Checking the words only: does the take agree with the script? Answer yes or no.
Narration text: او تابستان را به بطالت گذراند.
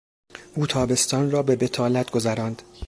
yes